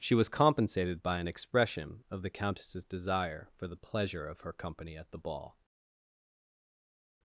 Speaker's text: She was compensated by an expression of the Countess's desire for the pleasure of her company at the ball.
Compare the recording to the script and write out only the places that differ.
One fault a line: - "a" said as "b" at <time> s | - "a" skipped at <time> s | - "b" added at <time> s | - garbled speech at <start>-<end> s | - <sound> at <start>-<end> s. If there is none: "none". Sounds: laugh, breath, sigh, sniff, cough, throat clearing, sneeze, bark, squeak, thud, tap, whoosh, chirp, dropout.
none